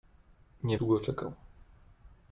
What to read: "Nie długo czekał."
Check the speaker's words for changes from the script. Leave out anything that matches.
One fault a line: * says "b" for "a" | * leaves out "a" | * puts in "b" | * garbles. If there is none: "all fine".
all fine